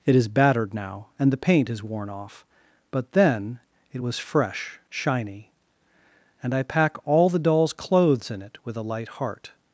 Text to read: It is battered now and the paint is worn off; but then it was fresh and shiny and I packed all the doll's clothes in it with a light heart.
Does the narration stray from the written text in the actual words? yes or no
yes